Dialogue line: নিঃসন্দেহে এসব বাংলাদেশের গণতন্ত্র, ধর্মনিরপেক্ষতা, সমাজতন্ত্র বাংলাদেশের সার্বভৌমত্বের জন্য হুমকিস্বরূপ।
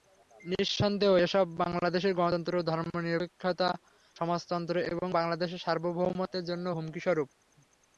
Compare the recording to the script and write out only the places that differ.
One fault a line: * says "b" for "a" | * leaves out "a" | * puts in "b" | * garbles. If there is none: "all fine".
* puts in "এবং"